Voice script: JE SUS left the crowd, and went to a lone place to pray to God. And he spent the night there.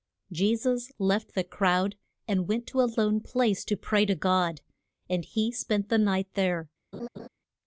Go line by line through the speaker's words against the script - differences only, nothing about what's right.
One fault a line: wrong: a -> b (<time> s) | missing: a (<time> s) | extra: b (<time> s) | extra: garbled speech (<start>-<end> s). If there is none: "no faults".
no faults